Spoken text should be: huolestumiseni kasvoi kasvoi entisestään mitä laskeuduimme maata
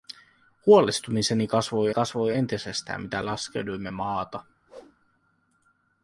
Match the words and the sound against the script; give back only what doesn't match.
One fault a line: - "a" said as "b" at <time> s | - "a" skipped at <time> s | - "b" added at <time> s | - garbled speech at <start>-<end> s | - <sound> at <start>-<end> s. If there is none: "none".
- whoosh at 4.7-5.0 s